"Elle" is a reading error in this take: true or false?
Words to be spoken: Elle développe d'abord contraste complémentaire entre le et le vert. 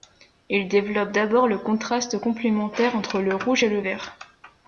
true